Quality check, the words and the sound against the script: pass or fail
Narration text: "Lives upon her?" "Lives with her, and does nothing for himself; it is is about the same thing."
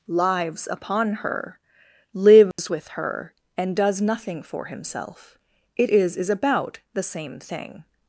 fail